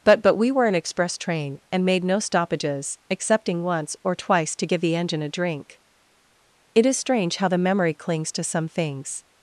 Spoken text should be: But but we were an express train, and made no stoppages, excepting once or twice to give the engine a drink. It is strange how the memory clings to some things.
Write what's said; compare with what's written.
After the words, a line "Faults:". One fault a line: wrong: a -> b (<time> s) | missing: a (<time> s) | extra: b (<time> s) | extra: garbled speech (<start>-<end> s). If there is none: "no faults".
But but we were an express train, and made no stoppages, excepting once or twice to give the engine a drink. It is strange how the memory clings to some things.
Faults:
no faults